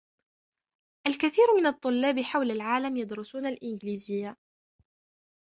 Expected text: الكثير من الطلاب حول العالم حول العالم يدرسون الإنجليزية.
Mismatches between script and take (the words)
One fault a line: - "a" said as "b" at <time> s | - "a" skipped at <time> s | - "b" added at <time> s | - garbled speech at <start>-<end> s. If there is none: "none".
- "حول العالم" skipped at 3.0 s